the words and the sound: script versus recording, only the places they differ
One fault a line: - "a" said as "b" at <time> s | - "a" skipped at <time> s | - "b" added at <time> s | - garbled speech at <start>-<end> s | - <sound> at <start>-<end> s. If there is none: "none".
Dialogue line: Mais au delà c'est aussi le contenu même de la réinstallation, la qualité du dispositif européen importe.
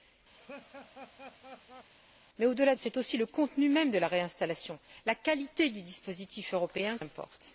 - laugh at 0.3-1.9 s